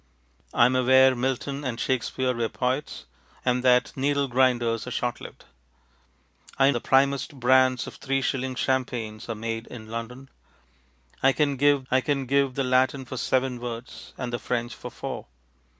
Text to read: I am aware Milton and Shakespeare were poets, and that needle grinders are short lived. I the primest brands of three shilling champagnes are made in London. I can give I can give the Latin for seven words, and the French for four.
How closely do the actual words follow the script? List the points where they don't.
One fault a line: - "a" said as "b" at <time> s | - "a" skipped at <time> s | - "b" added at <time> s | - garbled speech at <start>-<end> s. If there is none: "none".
none